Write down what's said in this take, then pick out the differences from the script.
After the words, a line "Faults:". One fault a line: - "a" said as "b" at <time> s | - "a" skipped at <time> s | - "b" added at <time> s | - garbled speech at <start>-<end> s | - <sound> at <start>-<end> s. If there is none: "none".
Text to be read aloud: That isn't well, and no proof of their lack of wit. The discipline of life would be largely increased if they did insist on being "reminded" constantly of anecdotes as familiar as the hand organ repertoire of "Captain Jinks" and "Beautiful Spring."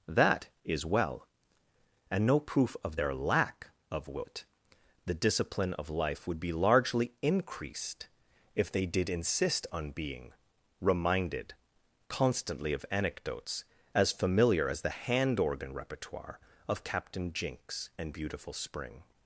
That is well, and no proof of their lack of wit. The discipline of life would be largely increased if they did insist on being "reminded" constantly of anecdotes as familiar as the hand organ repertoire of "Captain Jinks" and "Beautiful Spring."
Faults:
- "isn't" said as "is" at 0.7 s